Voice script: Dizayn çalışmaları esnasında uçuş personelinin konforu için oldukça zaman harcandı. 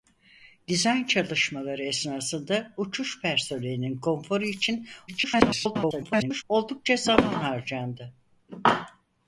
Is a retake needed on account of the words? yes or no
yes